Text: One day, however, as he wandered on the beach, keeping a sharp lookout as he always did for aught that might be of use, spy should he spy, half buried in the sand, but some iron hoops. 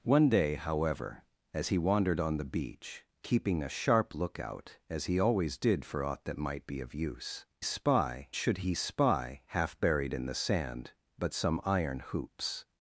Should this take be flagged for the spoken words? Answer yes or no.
no